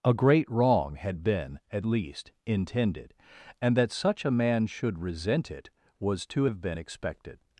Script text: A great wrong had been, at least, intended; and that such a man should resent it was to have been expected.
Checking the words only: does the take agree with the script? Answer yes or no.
yes